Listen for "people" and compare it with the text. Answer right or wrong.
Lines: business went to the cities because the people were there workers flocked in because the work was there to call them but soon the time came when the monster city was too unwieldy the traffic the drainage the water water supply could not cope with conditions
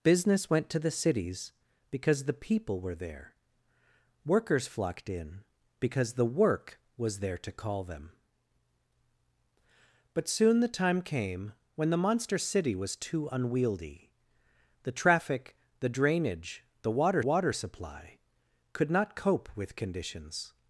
right